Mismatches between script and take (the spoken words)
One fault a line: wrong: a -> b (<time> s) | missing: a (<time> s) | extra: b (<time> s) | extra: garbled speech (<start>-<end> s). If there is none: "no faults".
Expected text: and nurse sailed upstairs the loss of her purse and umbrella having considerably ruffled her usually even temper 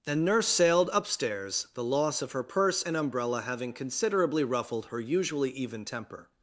no faults